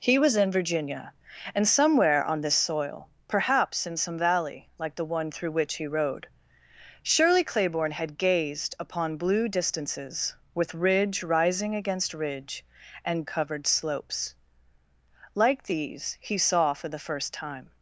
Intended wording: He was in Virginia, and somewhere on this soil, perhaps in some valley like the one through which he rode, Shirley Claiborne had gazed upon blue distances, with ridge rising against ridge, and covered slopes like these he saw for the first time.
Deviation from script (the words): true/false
false